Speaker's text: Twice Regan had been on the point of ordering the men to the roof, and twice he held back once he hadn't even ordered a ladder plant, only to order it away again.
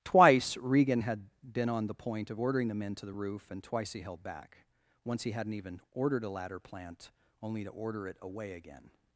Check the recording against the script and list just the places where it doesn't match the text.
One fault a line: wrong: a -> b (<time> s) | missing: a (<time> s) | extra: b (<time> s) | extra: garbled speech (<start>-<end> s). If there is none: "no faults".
no faults